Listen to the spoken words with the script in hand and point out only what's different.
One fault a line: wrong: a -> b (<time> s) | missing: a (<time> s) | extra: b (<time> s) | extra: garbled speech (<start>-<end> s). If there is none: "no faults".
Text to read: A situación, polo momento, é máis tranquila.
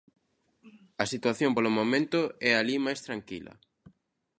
extra: alí (2.5 s)